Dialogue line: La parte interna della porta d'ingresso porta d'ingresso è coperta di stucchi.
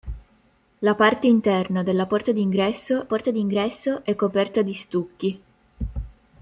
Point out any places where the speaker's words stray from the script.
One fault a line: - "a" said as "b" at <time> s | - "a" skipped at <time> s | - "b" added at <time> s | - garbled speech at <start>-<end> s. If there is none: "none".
none